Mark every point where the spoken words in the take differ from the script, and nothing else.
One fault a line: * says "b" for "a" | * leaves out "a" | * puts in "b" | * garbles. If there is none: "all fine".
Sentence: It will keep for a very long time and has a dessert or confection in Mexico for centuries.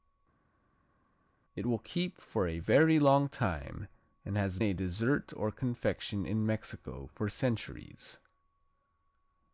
all fine